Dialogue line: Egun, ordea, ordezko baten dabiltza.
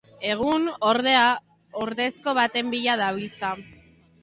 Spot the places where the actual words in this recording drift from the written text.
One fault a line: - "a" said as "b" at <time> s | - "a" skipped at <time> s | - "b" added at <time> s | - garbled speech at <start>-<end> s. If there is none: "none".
- "bila" added at 2.8 s